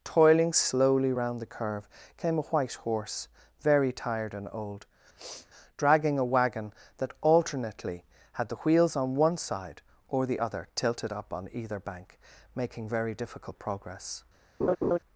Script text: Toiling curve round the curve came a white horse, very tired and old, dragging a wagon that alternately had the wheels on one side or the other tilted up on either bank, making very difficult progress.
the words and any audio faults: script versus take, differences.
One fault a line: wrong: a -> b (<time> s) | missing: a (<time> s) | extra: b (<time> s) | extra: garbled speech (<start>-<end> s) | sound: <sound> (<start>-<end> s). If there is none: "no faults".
wrong: curve -> slowly (0.5 s)
sound: sniff (5.2-5.5 s)
sound: laugh (14.6-15.0 s)